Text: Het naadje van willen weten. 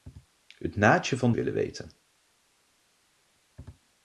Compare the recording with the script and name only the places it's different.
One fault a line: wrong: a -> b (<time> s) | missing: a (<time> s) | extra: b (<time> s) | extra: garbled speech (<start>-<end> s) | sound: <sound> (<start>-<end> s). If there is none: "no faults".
no faults